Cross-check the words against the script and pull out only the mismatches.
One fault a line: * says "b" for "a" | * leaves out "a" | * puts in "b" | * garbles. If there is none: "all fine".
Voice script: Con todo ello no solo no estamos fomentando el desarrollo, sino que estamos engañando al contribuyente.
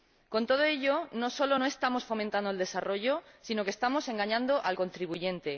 all fine